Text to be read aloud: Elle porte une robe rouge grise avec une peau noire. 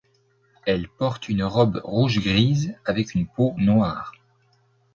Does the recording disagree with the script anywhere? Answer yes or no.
no